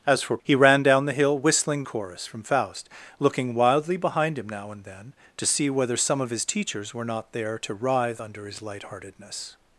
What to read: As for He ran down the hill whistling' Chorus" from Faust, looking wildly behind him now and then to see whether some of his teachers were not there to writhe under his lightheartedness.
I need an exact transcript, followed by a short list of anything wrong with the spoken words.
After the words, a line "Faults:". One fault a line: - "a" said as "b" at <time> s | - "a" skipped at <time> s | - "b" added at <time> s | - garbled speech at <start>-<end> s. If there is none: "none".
As for He ran down the hill whistling' Chorus" from Faust, looking wildly behind him now and then to see whether some of his teachers were not there to writhe under his lightheartedness.
Faults:
none